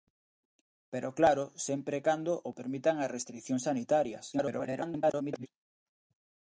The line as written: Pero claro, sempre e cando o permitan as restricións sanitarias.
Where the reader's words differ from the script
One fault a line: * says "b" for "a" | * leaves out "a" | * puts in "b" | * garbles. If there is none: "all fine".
* garbles